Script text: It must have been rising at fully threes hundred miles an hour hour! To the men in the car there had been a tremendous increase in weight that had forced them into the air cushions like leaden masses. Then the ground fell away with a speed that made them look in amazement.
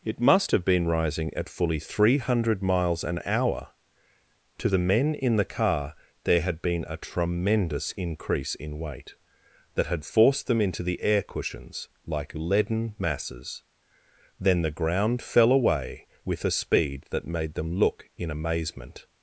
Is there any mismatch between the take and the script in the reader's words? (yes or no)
yes